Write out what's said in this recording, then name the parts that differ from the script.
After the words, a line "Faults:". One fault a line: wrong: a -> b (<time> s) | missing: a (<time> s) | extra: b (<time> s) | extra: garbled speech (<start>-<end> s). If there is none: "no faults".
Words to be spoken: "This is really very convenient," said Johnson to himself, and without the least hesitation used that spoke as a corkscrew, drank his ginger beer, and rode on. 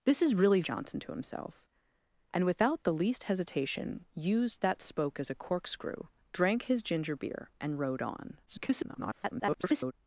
"This is really Johnson to himself, and without the least hesitation used that spoke as a corkscrew, drank his ginger beer, and rode on. [garbled]
Faults:
missing: very convenient said (0.6 s)
extra: garbled speech (8.5-9.9 s)